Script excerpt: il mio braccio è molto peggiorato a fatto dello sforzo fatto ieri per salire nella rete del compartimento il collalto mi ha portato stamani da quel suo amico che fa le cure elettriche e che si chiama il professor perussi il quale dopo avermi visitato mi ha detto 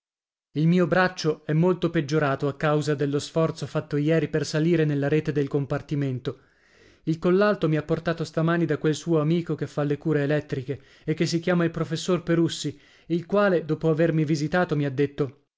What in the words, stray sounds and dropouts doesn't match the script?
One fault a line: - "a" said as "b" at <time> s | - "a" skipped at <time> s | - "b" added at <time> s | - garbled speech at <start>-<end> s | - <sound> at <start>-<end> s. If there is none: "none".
- "fatto" said as "causa" at 2.6 s